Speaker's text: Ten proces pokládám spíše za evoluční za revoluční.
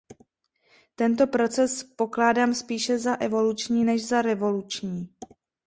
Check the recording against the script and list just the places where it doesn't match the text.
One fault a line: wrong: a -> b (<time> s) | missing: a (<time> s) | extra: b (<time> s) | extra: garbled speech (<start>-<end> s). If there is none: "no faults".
wrong: Ten -> Tento (0.9 s)
extra: než (3.8 s)